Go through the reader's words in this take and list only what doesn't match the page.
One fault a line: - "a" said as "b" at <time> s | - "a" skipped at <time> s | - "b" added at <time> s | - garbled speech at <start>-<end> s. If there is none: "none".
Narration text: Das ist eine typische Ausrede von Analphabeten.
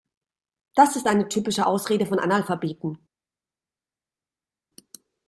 none